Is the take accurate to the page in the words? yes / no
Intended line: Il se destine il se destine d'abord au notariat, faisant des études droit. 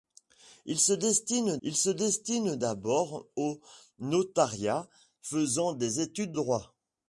yes